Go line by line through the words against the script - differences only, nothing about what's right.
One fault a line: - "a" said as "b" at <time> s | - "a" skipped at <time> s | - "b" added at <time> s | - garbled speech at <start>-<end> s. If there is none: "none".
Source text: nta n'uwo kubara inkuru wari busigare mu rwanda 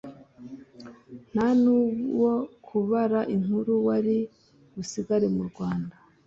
none